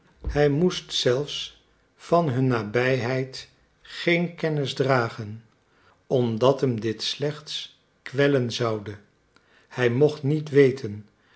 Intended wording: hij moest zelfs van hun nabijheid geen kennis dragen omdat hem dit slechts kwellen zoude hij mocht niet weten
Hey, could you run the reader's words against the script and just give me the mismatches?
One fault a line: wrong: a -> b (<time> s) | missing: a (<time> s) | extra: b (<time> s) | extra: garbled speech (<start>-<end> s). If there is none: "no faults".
no faults